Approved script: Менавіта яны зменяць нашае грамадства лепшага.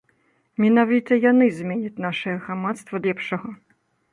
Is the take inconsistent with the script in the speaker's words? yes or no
no